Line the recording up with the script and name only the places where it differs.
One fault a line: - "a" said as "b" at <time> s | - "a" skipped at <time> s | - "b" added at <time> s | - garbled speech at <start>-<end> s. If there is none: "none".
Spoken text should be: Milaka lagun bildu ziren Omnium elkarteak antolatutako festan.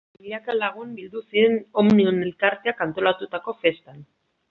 none